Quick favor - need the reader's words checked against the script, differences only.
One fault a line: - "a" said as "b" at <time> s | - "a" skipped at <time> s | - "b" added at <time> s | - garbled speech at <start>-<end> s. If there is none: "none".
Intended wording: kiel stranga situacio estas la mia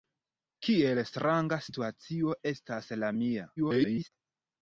- garbled speech at 3.6-4.1 s